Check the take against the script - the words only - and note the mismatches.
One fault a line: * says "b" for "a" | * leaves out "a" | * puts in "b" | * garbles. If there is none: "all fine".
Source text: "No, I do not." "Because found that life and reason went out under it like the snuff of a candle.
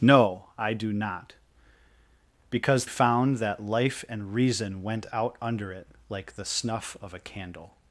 all fine